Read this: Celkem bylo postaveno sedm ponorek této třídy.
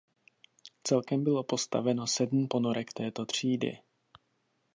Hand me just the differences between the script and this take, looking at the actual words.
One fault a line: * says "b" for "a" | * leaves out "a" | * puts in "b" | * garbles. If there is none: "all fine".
all fine